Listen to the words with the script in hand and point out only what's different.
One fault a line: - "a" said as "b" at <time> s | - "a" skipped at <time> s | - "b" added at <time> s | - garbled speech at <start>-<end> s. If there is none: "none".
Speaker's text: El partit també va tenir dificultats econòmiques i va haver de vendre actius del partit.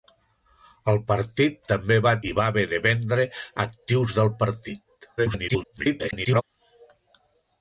- "tenir dificultats econòmiques" skipped at 2.1 s
- garbled speech at 5.2-6.4 s